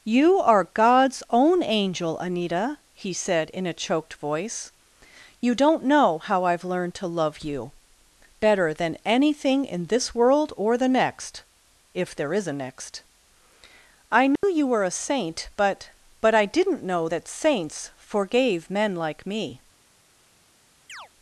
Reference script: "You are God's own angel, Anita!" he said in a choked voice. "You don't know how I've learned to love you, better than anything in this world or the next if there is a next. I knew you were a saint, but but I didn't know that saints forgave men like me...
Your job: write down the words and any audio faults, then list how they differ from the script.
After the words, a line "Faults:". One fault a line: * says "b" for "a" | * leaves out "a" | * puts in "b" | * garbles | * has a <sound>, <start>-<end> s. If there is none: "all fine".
"You are God's own angel, Anita!" he said in a choked voice. "You don't know how I've learned to love you, better than anything in this world or the next if there is a next. I knew you were a saint, but but I didn't know that saints forgave men like me...
Faults:
* has a dropout, 14.4-14.4 s
* has a chirp, 20.9-21.1 s